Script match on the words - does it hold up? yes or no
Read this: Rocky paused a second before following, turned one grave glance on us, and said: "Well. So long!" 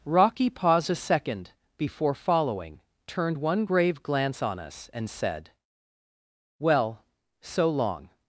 yes